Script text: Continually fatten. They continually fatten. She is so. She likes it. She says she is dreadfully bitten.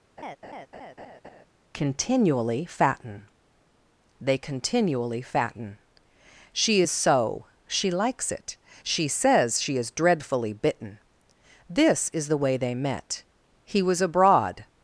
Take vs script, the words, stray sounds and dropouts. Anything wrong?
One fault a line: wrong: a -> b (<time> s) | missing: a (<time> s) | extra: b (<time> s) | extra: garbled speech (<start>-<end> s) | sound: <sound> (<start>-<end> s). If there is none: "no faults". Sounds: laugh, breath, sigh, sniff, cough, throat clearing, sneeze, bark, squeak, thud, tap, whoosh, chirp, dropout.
sound: laugh (0.2-1.5 s)
extra: This is the way they met He was abroad (11.7 s)